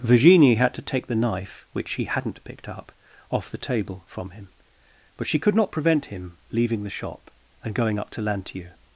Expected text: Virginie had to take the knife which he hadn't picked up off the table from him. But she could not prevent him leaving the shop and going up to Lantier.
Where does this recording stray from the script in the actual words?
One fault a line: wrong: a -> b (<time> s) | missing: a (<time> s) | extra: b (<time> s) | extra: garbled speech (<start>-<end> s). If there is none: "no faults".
no faults